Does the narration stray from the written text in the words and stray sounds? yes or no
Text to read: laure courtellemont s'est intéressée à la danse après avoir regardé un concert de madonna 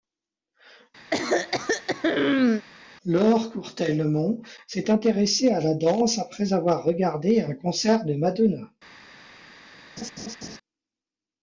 yes